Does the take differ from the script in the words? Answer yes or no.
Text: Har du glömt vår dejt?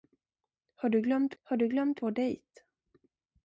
yes